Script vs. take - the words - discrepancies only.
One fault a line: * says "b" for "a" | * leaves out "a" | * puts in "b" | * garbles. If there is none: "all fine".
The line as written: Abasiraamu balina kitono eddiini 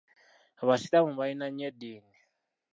* says "nnyo" for "kitono"